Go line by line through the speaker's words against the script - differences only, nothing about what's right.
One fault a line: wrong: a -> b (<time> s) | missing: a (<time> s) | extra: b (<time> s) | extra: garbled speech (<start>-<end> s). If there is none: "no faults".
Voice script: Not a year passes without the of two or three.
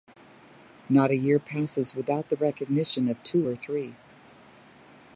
extra: recognition (2.4 s)